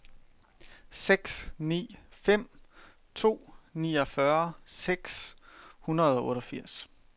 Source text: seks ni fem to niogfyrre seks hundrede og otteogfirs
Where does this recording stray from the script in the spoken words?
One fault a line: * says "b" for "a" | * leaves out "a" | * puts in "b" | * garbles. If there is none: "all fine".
all fine